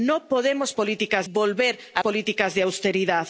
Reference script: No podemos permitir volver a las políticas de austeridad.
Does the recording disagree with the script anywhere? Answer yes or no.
yes